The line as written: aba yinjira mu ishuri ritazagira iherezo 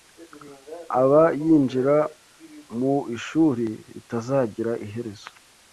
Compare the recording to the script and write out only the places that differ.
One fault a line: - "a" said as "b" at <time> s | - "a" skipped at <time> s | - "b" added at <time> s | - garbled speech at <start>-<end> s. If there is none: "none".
none